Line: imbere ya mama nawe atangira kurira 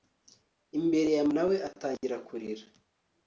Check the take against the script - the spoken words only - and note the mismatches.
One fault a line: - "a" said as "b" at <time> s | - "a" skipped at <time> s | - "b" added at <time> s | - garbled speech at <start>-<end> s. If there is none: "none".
- "mama" skipped at 1.2 s